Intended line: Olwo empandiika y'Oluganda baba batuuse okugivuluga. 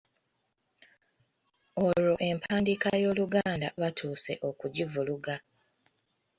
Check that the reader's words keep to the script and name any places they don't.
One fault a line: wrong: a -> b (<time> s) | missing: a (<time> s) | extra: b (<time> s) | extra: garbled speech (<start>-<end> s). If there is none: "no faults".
missing: baba (3.7 s)